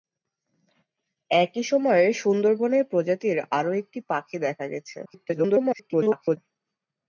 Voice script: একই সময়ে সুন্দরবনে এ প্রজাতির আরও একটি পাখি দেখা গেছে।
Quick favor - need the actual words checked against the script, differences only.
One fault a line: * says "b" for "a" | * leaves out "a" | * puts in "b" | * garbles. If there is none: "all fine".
* garbles